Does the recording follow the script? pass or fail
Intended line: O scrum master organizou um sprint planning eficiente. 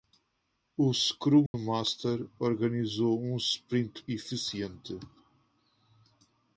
fail